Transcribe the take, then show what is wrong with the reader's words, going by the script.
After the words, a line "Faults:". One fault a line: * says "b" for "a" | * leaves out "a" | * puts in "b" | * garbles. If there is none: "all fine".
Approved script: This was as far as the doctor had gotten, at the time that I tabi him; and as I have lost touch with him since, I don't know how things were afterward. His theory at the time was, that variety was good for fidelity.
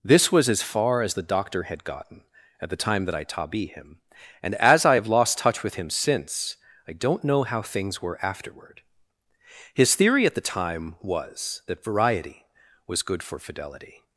This was as far as the doctor had gotten, at the time that I tabi him; and as I have lost touch with him since, I don't know how things were afterward. His theory at the time was, that variety was good for fidelity.
Faults:
all fine